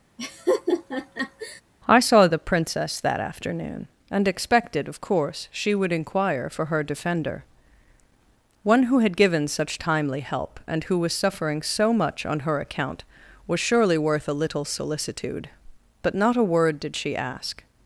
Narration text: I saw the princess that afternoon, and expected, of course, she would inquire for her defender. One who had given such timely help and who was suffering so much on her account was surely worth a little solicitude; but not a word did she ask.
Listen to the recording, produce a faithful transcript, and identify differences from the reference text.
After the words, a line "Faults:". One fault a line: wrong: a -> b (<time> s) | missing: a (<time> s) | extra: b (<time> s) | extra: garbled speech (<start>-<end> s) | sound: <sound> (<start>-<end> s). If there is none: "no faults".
I saw the princess that afternoon, and expected, of course, she would inquire for her defender. One who had given such timely help and who was suffering so much on her account was surely worth a little solicitude; but not a word did she ask.
Faults:
sound: laugh (0.2-1.6 s)